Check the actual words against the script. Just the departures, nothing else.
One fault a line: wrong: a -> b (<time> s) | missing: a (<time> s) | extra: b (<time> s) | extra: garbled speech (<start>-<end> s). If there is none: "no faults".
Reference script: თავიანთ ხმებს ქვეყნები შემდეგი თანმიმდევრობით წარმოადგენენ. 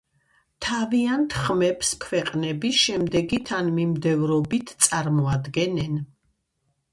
no faults